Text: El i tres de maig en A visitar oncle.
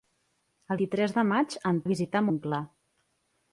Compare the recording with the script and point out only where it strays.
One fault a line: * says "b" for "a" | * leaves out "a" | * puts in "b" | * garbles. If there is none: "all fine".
all fine